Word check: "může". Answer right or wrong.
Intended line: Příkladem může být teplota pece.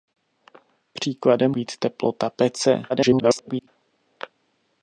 wrong